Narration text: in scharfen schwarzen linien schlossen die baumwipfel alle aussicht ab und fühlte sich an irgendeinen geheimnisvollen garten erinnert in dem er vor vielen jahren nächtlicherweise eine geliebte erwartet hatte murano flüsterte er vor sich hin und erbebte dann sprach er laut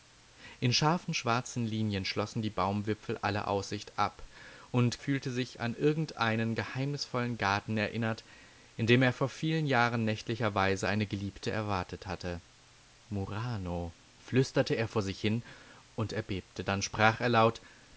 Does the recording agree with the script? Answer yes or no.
yes